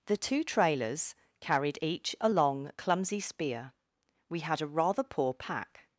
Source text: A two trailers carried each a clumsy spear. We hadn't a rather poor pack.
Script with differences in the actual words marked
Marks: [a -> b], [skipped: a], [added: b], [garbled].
[A -> The] two trailers carried each a [added: long] clumsy spear. We [hadn't -> had] a rather poor pack.